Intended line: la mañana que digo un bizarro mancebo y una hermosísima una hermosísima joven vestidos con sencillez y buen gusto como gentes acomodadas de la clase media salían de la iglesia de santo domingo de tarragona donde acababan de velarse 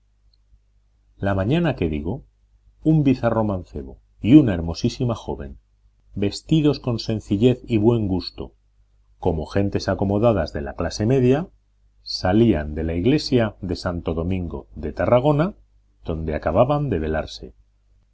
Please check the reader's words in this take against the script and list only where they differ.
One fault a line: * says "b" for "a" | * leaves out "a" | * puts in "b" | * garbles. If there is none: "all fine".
* leaves out "una hermosísima"